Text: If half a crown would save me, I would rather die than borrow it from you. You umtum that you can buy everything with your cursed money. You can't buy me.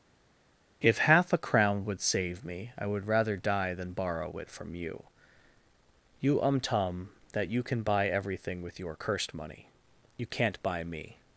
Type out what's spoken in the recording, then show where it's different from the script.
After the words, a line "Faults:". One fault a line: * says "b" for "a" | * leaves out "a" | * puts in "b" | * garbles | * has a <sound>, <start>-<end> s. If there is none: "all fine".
If half a crown would save me, I would rather die than borrow it from you. You umtum that you can buy everything with your cursed money. You can't buy me.
Faults:
all fine